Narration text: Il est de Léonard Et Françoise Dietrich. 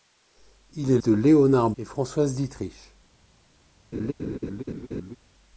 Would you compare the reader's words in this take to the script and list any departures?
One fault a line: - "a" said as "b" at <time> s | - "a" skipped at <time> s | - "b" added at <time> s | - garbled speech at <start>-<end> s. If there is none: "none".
none